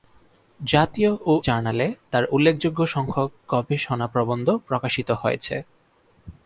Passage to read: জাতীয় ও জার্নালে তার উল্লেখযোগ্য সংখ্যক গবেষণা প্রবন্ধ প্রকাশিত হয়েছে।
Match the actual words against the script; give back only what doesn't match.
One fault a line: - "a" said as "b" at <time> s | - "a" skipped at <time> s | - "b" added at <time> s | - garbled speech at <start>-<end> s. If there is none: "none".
none